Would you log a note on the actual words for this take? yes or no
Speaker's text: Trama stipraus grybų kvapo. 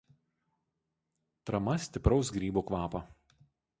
no